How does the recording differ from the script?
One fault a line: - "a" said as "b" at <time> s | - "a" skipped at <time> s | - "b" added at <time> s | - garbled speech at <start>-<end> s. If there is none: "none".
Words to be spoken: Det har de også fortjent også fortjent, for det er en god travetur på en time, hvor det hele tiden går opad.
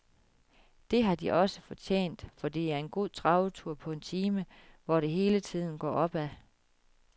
- "også fortjent" skipped at 2.3 s